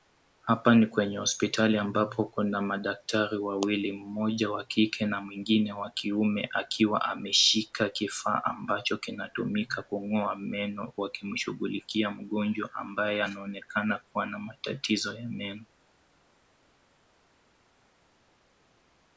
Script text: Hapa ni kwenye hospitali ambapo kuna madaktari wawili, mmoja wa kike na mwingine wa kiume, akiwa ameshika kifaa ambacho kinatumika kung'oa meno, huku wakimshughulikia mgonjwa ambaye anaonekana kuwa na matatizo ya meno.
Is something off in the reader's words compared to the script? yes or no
yes